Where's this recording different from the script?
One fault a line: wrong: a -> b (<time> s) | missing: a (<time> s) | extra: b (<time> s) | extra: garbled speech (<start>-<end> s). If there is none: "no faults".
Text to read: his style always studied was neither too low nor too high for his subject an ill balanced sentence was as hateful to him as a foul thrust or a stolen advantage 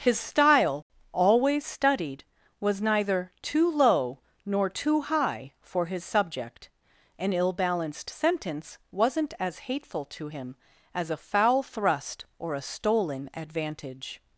wrong: was -> wasn't (8.9 s)